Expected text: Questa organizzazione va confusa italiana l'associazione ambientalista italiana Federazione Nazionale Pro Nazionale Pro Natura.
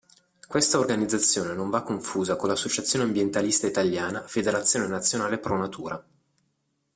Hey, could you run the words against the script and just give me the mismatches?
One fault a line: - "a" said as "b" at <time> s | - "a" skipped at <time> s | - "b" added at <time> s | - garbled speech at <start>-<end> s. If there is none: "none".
- "non" added at 1.5 s
- "italiana" said as "con" at 2.4 s
- "Nazionale Pro" skipped at 5.6 s